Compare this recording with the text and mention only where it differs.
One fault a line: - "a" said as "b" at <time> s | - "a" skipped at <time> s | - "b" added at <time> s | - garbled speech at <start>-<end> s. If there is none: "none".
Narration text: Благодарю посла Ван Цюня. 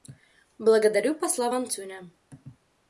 none